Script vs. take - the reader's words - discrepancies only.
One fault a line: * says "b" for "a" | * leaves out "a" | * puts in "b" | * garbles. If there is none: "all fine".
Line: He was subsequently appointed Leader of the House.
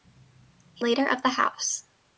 * leaves out "was subsequently appointed"